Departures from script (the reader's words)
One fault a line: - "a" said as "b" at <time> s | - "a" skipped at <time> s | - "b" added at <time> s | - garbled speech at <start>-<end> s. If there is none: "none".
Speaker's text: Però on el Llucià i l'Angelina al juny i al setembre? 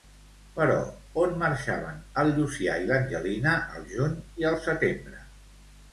- "marxaven" added at 1.4 s